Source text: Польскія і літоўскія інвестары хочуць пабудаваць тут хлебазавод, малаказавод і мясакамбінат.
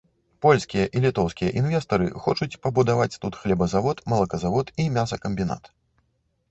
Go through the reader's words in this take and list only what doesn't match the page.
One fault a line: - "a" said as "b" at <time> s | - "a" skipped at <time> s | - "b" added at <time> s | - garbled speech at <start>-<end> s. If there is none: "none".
none